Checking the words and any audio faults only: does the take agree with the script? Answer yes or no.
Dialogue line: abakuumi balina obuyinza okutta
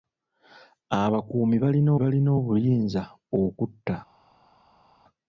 no